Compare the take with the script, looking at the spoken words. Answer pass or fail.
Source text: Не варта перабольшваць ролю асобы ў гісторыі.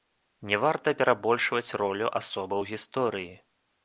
pass